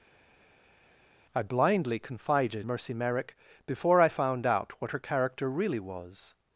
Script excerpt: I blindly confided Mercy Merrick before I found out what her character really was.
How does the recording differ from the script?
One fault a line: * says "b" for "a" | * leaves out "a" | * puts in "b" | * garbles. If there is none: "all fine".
all fine